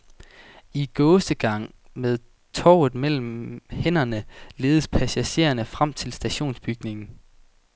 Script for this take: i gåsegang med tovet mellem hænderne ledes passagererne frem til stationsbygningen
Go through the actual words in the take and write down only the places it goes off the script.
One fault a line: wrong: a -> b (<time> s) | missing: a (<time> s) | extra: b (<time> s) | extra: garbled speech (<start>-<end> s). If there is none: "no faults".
no faults